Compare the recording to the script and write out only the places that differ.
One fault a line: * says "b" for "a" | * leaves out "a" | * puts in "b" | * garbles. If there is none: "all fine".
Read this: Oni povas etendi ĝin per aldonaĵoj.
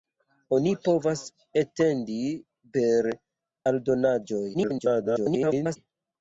* leaves out "ĝin"
* garbles